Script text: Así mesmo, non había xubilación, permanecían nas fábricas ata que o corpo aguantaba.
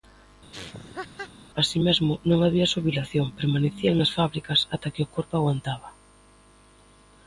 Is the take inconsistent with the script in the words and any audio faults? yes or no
yes